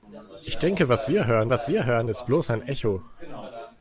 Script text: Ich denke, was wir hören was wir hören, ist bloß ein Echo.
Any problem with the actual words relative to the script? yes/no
no